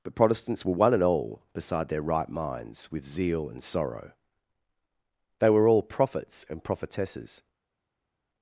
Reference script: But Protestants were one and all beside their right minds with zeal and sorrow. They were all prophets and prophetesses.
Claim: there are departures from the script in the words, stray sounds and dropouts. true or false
false